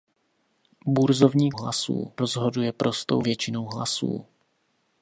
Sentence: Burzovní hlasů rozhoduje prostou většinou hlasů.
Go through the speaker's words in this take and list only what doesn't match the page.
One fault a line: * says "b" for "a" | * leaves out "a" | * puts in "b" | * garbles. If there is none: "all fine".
all fine